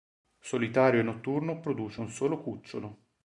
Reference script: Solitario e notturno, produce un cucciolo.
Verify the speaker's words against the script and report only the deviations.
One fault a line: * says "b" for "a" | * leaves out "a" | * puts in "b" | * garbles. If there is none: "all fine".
* puts in "solo"